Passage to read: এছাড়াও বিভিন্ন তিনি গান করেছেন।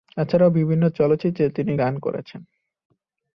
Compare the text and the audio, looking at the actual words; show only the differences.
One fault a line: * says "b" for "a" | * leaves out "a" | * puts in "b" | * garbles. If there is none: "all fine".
* puts in "চলচ্চিত্রে"